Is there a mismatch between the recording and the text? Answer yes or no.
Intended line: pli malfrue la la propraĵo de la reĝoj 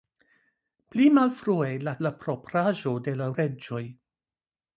no